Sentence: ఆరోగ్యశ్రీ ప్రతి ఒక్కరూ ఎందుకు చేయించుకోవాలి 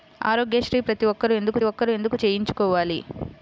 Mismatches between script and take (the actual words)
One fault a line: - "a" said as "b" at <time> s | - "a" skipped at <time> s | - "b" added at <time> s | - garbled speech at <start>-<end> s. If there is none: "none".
- "ఒక్కరూ ఎందుకు" added at 1.6 s